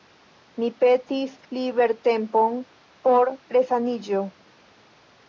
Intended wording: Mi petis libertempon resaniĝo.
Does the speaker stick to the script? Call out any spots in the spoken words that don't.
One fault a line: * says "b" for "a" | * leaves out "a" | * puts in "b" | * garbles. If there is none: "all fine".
* puts in "por"